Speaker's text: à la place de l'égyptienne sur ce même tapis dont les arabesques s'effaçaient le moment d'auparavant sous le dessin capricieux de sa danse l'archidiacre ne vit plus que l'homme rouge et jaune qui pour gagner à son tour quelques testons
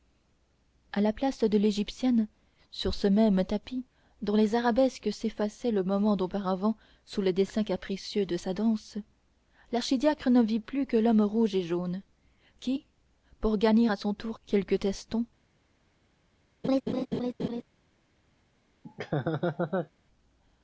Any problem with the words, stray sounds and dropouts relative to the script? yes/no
yes